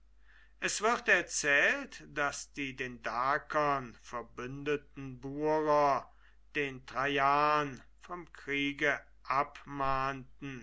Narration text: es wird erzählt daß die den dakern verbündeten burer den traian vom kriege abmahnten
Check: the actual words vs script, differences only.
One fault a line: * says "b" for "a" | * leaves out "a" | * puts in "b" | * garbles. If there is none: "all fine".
all fine